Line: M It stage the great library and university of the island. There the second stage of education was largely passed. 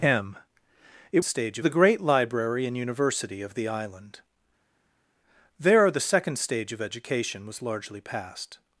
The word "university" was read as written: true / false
true